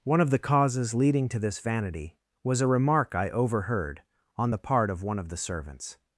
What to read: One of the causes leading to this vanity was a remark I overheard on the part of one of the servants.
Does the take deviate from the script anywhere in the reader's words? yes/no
no